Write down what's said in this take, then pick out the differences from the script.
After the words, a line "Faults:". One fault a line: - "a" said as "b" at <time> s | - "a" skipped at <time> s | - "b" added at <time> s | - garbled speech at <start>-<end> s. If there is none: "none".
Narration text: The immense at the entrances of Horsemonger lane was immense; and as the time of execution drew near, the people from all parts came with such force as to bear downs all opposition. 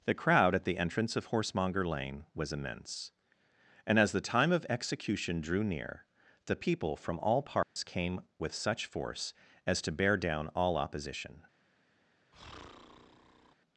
The crowd at the entrance of Horsemonger lane was immense; and as the time of execution drew near, the people from all parts came with such force as to bear down all opposition.
Faults:
- "immense" said as "crowd" at 0.1 s
- "entrances" said as "entrance" at 0.8 s
- "downs" said as "down" at 10.1 s